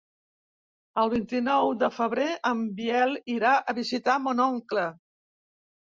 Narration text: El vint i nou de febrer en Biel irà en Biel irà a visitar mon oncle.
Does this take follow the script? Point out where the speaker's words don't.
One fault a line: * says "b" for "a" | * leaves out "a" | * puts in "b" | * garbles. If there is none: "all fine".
* leaves out "en Biel irà"